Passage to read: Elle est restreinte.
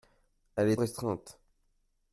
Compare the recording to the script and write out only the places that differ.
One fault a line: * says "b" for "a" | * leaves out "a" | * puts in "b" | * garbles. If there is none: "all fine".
all fine